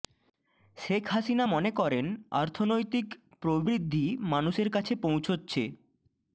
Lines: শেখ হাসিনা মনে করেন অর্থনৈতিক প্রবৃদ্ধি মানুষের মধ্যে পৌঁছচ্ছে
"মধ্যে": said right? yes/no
no